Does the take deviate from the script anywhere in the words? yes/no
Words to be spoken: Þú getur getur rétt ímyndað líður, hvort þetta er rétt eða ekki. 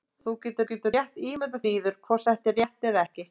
no